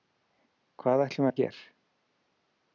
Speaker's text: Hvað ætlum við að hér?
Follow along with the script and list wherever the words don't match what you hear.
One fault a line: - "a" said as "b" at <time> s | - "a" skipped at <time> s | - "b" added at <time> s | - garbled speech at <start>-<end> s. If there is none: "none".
none